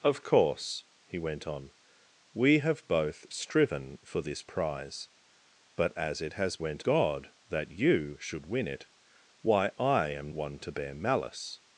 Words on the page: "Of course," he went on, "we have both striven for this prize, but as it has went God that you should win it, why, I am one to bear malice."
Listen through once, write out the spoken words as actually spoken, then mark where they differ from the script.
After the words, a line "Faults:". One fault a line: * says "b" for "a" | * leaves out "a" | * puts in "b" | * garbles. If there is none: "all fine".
"Of course," he went on, "we have both striven for this prize, but as it has went God that you should win it, why, I am one to bear malice."
Faults:
all fine